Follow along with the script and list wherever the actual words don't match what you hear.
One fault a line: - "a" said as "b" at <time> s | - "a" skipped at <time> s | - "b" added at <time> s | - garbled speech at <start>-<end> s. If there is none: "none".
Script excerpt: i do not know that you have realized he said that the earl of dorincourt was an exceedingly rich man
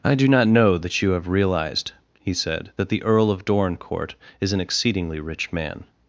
- "was" said as "is" at 4.4 s